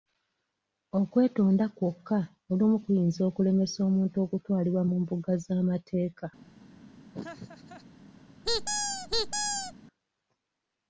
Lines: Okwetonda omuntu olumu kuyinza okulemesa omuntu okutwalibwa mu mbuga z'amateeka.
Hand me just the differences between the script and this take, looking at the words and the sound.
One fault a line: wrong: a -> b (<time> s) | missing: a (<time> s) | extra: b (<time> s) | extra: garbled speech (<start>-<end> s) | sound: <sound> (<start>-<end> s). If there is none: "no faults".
wrong: omuntu -> kwokka (1.8 s)
sound: laugh (7.1-7.8 s)
sound: squeak (8.4-9.7 s)